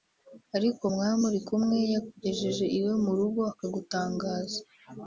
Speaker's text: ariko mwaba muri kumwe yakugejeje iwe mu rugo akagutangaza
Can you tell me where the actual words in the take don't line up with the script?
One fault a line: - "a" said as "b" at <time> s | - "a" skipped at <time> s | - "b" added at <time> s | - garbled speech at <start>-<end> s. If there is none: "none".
none